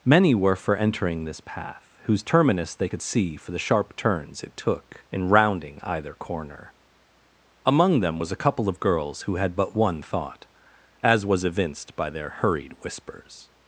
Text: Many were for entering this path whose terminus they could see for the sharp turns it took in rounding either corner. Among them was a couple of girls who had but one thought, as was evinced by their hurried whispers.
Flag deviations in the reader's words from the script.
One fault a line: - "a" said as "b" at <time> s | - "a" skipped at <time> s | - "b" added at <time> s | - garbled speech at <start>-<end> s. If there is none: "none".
none